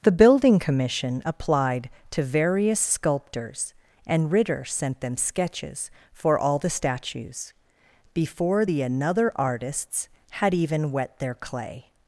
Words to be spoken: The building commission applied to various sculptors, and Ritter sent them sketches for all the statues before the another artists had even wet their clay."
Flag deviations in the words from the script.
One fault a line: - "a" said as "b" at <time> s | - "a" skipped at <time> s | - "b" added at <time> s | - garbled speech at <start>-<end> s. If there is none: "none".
none